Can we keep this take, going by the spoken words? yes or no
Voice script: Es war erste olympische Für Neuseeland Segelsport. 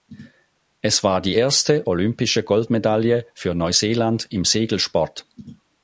no